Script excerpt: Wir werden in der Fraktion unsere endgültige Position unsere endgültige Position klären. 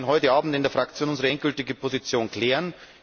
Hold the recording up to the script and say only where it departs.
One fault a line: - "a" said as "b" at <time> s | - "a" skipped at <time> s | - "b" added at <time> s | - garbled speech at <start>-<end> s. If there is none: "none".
- "heute Abend" added at 0.1 s
- "unsere endgültige Position" skipped at 2.3 s